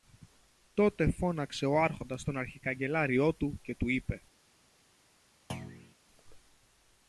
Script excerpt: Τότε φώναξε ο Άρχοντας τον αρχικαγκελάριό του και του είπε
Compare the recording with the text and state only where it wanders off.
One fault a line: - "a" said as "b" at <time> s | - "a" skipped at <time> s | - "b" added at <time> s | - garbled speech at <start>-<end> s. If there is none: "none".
none